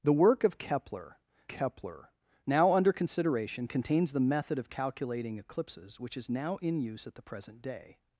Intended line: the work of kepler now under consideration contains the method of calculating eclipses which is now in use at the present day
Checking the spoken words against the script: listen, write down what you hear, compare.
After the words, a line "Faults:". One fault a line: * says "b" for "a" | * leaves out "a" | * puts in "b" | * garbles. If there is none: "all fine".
the work of kepler kepler now under consideration contains the method of calculating eclipses which is now in use at the present day
Faults:
* puts in "kepler"